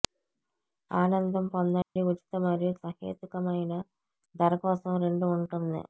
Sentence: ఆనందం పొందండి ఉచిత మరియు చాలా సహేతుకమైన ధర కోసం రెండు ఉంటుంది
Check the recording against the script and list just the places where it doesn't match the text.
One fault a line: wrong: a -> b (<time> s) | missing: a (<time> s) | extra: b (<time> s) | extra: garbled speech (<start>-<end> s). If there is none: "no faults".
missing: చాలా (2.7 s)